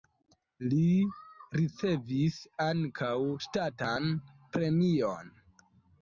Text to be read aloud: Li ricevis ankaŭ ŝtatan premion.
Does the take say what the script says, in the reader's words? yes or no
yes